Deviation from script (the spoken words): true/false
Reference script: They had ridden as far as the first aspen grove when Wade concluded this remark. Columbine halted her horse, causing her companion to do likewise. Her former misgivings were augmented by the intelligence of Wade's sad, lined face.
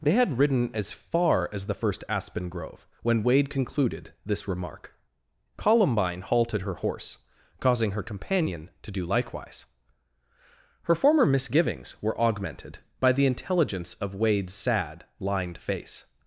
false